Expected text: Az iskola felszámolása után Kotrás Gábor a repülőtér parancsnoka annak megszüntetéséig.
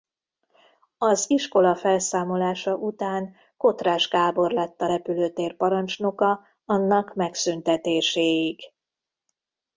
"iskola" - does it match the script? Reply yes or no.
yes